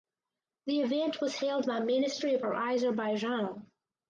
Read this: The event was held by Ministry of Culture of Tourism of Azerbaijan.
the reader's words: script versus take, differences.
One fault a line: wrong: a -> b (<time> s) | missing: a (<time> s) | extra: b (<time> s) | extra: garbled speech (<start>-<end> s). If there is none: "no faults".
missing: Culture of Tourism (2.5 s)